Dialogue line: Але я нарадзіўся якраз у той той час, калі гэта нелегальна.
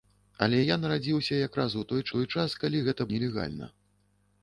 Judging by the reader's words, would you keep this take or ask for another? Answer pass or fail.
pass